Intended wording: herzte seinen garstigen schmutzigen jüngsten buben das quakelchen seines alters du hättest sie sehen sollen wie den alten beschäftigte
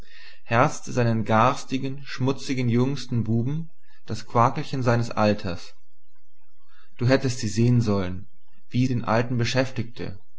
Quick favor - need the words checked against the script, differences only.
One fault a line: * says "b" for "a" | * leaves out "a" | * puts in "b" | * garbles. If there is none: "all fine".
all fine